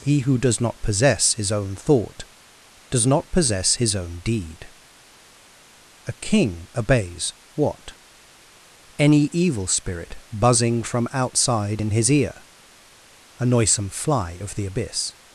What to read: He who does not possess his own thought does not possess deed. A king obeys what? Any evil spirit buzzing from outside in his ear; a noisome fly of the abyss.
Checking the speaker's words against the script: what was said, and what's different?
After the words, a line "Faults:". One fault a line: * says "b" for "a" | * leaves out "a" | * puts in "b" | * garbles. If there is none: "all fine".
He who does not possess his own thought does not possess his own deed. A king obeys what? Any evil spirit buzzing from outside in his ear; a noisome fly of the abyss.
Faults:
* puts in "his own"